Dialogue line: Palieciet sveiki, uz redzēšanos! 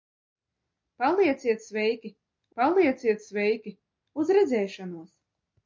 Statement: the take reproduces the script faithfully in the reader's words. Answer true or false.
false